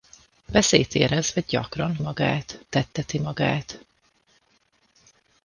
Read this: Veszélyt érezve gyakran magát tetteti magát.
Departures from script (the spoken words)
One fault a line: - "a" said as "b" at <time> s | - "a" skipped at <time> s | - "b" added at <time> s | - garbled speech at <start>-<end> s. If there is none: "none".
none